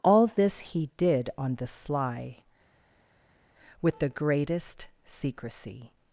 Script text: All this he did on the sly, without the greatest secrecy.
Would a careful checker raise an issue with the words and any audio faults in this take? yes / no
yes